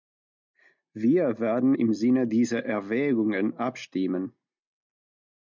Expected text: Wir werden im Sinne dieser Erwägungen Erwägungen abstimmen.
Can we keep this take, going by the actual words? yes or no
no